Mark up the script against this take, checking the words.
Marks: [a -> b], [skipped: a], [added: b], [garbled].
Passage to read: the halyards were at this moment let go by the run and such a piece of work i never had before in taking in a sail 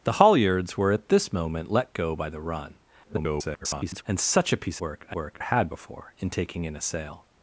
the halyards were at this moment let go by the run [garbled] and such a piece [skipped: of] work i [never -> work] had before in taking in a sail